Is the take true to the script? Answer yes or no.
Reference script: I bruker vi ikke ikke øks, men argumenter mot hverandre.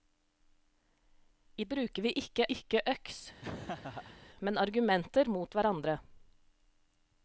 yes